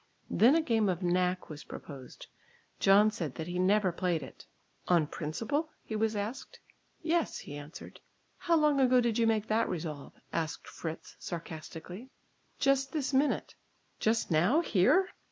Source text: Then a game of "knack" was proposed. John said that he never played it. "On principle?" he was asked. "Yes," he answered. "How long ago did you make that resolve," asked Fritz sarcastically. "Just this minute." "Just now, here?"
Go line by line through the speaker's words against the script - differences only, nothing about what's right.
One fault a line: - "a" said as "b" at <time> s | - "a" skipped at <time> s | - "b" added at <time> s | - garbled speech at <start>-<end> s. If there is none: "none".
none